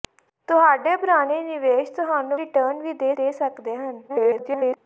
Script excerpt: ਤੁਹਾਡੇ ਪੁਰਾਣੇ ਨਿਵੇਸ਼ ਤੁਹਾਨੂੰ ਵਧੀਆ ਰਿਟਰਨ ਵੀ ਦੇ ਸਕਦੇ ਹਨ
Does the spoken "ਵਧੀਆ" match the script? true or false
false